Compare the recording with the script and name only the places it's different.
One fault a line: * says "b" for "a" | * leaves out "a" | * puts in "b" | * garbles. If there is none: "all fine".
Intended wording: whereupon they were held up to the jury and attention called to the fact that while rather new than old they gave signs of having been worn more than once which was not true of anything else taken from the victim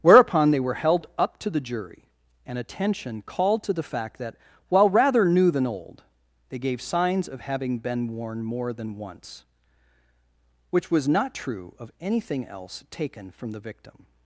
all fine